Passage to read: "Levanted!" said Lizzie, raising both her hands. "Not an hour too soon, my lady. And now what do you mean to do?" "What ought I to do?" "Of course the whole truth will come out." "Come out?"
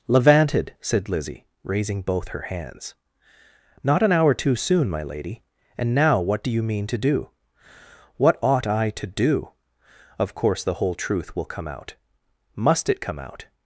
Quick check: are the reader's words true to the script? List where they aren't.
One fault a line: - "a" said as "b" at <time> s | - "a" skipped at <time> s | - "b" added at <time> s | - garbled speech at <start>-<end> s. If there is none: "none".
- "Must it" added at 12.6 s